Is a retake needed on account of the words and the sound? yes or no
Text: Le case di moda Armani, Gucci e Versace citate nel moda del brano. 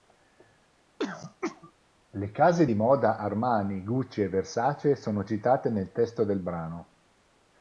yes